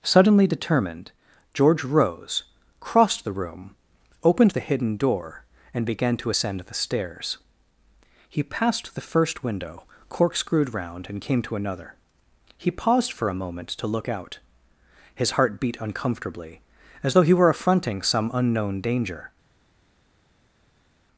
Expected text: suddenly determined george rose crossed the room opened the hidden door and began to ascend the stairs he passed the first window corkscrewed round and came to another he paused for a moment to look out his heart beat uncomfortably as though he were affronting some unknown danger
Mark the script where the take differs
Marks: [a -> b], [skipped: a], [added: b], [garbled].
suddenly determined george rose crossed the room opened the hidden door and began to ascend the stairs he passed the first window corkscrewed round and came to another he paused for a moment to look out his heart beat uncomfortably as though he were affronting some unknown danger